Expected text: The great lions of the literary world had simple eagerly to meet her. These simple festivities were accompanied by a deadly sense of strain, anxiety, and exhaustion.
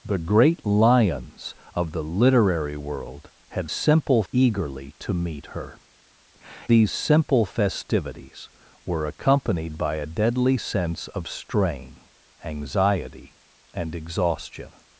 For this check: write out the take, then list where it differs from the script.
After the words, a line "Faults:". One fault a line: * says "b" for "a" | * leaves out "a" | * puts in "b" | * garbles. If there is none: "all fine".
The great lions of the literary world had simple eagerly to meet her. These simple festivities were accompanied by a deadly sense of strain, anxiety, and exhaustion.
Faults:
all fine